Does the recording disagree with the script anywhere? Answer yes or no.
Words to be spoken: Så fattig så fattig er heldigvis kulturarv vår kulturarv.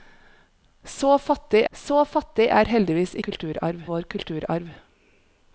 no